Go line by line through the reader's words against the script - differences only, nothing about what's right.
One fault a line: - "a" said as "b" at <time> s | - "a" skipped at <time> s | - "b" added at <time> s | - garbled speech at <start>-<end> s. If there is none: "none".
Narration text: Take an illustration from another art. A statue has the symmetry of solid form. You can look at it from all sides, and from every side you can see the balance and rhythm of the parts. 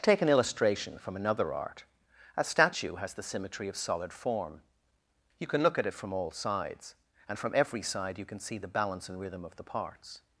none